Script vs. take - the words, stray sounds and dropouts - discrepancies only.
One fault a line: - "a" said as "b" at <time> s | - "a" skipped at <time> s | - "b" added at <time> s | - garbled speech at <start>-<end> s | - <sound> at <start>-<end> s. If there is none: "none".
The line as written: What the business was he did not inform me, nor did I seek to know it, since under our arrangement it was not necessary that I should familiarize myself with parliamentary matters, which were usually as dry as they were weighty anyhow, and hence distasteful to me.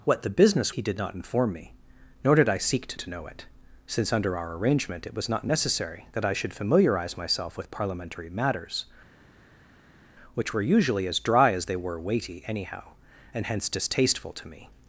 - "was" skipped at 0.7 s
- "to" added at 3.0 s